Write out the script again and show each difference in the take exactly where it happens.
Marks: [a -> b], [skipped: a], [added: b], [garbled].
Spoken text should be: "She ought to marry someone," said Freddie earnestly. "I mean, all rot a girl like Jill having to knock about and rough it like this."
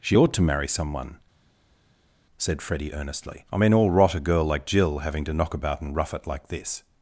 "She ought to marry someone," said Freddie earnestly. "I mean, all rot a girl like Jill having to knock about and rough it like this."